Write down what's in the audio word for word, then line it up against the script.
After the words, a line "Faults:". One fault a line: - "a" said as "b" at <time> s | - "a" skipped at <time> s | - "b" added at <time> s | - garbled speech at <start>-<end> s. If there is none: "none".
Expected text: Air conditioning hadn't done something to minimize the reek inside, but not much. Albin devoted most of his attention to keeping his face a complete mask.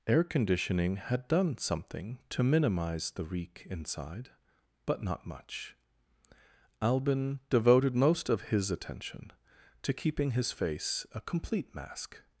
Air conditioning had done something to minimize the reek inside, but not much. Albin devoted most of his attention to keeping his face a complete mask.
Faults:
- "hadn't" said as "had" at 0.9 s